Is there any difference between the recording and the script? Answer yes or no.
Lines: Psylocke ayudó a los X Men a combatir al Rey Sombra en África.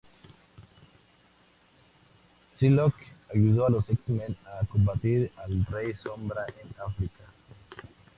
no